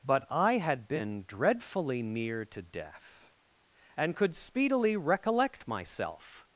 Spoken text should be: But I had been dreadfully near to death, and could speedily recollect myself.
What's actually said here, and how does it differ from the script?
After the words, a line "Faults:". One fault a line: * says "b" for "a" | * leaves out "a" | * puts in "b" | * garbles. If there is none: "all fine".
But I had been dreadfully near to death, and could speedily recollect myself.
Faults:
all fine